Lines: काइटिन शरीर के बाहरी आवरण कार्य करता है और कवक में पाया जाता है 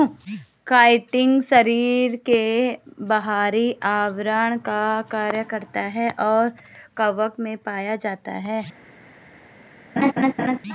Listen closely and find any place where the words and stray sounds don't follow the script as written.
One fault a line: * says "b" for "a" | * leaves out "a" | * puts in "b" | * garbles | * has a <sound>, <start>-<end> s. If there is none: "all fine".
* puts in "का"
* has a laugh, 10.0-10.6 s